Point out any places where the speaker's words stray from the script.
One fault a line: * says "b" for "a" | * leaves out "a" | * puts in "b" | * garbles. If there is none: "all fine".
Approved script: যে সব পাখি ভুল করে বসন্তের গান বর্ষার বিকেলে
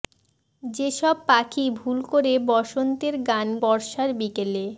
all fine